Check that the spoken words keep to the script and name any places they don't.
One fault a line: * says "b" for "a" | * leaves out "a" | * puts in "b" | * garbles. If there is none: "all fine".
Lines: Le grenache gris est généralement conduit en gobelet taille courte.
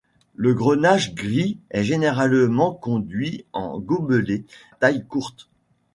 all fine